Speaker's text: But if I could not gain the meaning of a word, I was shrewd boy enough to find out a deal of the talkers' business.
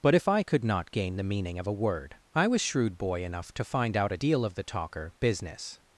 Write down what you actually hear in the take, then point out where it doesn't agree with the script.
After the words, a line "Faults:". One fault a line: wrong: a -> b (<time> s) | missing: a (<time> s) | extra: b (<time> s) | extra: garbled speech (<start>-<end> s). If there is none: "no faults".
But if I could not gain the meaning of a word, I was shrewd boy enough to find out a deal of the talker' business.
Faults:
wrong: talkers -> talker (4.6 s)